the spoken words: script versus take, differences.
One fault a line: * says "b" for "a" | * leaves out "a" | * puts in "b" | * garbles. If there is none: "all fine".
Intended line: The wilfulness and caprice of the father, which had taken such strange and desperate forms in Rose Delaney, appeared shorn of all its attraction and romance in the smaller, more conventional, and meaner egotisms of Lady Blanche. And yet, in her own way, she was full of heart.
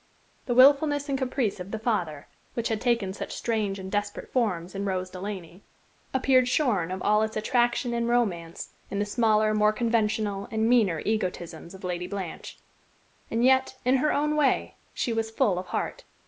all fine